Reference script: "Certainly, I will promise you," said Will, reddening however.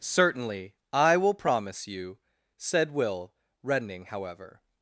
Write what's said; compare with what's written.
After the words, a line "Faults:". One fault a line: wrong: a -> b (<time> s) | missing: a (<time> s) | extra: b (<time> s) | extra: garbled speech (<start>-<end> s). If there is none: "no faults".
"Certainly, I will promise you," said Will, reddening however.
Faults:
no faults